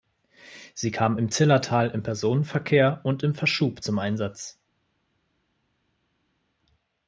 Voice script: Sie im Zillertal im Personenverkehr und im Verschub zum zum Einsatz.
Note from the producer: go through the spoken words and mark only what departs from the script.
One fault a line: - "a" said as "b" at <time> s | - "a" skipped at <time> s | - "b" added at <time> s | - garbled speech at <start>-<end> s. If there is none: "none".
- "kam" added at 0.9 s
- "zum" skipped at 4.0 s